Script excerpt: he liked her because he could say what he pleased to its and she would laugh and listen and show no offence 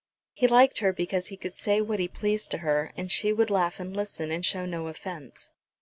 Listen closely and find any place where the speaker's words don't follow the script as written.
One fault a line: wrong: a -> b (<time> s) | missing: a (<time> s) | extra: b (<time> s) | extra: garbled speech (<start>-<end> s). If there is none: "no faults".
wrong: its -> her (2.6 s)